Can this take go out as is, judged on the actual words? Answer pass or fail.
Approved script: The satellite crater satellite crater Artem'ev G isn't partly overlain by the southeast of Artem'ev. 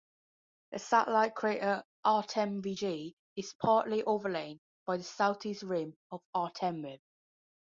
fail